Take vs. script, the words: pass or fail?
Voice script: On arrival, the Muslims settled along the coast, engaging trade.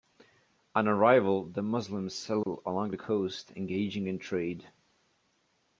fail